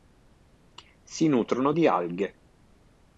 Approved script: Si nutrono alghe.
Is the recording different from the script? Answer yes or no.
yes